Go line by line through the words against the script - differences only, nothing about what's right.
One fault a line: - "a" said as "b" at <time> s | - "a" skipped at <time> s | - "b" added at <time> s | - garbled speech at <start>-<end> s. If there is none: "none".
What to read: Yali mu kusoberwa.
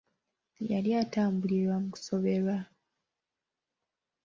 - "atambulira" added at 1.0 s